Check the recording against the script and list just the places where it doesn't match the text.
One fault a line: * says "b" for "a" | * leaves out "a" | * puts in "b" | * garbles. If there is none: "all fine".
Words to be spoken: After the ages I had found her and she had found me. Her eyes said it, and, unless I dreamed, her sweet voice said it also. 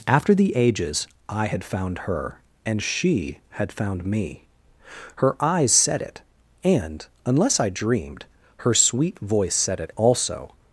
all fine